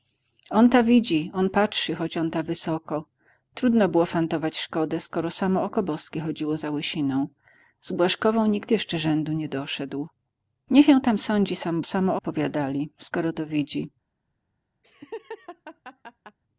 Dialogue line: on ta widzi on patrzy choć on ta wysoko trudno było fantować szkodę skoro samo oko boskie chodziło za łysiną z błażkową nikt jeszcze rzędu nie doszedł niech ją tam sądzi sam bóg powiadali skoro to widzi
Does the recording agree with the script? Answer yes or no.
no